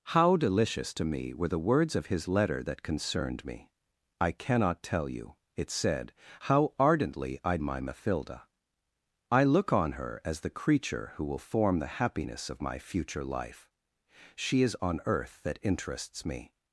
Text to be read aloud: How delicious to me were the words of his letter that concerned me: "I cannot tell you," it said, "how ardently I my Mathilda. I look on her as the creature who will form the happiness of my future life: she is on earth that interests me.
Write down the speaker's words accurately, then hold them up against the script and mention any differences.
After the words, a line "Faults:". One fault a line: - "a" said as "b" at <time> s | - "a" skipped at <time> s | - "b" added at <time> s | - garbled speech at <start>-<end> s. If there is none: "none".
How delicious to me were the words of his letter that concerned me: "I cannot tell you," it said, "how ardently I my Mathilda. I look on her as the creature who will form the happiness of my future life: she is on earth that interests me.
Faults:
none